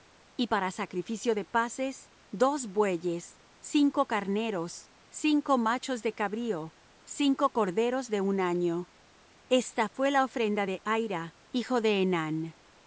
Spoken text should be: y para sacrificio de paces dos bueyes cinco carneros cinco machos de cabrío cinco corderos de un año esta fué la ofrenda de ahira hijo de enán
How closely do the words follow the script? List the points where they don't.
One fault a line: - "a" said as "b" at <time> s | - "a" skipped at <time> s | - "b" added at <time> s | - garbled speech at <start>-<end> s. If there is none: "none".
none